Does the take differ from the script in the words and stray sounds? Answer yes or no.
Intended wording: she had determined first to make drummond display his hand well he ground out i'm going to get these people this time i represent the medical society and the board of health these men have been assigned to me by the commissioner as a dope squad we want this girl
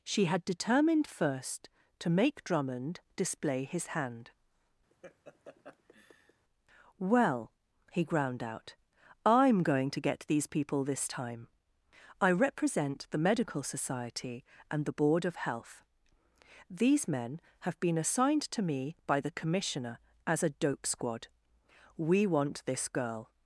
yes